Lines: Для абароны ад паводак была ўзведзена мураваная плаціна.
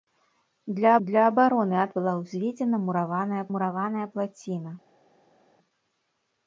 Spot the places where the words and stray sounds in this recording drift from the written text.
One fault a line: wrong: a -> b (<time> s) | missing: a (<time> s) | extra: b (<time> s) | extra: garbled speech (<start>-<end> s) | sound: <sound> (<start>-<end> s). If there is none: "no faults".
extra: для (1.1 s)
missing: паводак (1.9 s)
extra: мураваная (3.5 s)